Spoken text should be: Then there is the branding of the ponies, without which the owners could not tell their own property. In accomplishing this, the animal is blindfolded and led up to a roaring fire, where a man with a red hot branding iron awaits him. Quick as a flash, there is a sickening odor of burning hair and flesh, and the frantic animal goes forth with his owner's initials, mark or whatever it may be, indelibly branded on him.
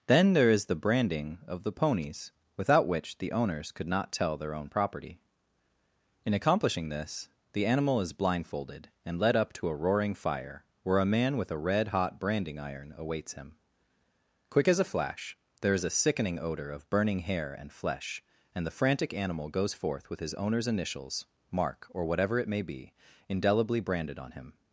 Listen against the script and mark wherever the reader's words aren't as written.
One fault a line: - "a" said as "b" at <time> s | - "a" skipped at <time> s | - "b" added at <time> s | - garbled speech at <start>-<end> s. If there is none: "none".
none